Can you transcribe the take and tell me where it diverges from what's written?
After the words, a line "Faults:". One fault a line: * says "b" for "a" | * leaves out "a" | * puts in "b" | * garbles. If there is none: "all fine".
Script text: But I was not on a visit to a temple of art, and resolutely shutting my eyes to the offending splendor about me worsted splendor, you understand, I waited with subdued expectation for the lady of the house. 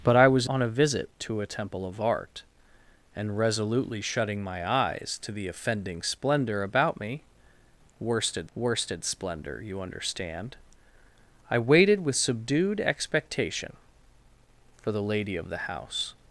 But I was on a visit to a temple of art, and resolutely shutting my eyes to the offending splendor about me worsted worsted splendor, you understand, I waited with subdued expectation for the lady of the house.
Faults:
* leaves out "not"
* puts in "worsted"